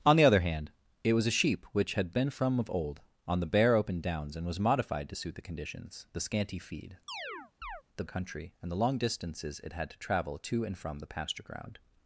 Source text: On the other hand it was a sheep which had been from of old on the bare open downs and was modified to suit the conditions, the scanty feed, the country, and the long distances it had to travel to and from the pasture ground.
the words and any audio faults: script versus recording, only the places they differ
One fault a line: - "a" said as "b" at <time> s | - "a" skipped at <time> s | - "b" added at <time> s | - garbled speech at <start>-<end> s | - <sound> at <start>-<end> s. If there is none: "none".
- chirp at 7.1-7.8 s